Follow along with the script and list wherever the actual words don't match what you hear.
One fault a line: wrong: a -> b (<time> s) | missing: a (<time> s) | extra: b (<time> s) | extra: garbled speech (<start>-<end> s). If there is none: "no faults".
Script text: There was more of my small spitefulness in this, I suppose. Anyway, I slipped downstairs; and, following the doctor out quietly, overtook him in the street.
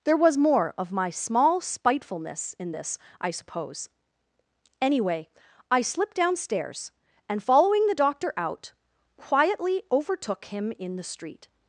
no faults